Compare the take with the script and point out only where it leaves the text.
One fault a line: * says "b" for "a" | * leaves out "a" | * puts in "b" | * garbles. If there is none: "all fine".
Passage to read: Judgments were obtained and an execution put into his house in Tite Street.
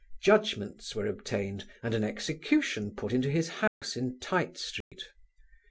all fine